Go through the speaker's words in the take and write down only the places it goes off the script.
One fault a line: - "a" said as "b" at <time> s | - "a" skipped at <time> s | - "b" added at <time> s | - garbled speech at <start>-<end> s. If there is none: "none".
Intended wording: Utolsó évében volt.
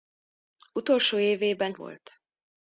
none